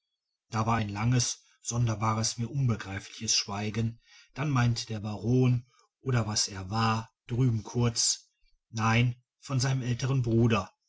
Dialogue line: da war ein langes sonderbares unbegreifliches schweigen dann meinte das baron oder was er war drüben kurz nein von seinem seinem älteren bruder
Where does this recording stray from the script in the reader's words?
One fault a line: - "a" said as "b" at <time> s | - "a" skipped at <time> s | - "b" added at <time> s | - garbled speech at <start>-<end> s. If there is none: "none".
- "mir" added at 2.4 s
- "das" said as "der" at 4.9 s
- "seinem" skipped at 9.8 s